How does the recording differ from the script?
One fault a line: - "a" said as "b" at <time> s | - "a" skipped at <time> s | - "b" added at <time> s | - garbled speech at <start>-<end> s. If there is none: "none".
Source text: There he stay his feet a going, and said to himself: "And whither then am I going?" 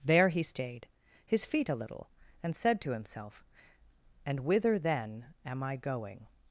- "stay" said as "stayed" at 0.4 s
- "going" said as "little" at 1.8 s